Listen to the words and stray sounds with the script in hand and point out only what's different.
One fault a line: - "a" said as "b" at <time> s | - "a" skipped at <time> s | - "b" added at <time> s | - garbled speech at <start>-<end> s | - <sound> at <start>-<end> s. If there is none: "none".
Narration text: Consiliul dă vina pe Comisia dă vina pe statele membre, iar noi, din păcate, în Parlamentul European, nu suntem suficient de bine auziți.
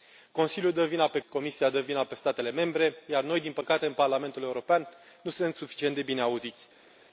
none